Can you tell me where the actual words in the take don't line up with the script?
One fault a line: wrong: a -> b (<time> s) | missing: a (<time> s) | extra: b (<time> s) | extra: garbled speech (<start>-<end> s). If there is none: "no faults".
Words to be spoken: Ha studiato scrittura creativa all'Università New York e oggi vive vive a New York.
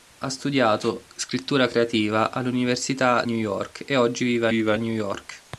no faults